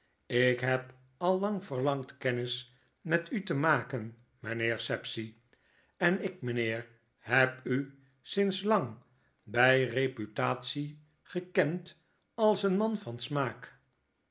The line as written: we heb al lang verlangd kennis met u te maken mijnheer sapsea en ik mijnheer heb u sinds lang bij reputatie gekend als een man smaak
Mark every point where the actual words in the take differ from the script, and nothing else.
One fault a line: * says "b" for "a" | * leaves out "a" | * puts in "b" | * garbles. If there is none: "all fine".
* says "ik" for "we"
* puts in "van"